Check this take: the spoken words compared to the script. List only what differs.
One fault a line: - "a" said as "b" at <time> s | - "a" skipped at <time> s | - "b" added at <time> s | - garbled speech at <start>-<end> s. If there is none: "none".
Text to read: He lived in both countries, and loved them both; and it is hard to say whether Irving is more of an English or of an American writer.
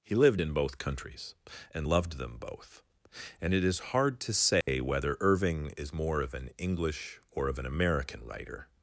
none